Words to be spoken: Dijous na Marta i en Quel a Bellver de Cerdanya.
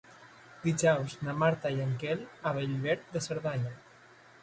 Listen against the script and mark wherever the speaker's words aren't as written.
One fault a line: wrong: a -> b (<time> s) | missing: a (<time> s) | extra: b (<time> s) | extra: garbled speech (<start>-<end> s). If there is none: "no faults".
no faults